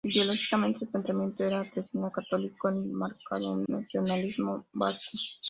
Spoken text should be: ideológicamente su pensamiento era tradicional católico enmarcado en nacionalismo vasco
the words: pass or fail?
pass